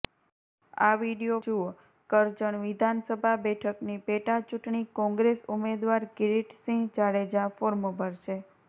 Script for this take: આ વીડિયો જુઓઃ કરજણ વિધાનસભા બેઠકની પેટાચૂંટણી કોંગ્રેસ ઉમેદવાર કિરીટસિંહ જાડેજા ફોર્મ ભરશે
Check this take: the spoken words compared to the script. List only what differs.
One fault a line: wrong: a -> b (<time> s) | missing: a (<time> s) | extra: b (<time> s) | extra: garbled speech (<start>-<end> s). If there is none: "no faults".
no faults